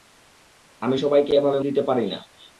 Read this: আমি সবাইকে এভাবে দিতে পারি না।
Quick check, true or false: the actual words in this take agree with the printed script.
true